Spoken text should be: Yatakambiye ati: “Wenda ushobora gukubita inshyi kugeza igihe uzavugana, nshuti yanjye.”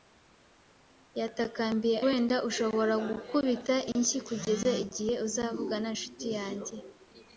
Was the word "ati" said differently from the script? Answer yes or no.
yes